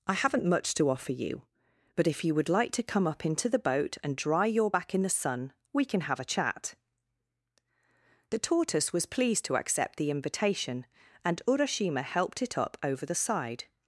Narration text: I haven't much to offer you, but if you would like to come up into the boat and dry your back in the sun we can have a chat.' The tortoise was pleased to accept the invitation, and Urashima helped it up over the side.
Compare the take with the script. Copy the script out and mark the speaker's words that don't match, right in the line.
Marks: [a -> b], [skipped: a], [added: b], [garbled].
I haven't much to offer you, but if you would like to come up into the boat and dry your back in the sun we can have a chat.' The tortoise was pleased to accept the invitation, and Urashima helped it up over the side.